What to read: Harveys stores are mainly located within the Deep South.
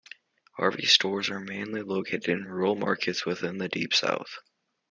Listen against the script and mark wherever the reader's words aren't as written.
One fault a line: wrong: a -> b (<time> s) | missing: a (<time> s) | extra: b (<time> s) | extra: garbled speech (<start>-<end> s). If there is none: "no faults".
extra: in rural markets (2.3 s)